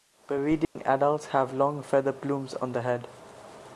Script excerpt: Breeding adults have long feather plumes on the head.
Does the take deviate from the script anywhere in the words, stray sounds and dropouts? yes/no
yes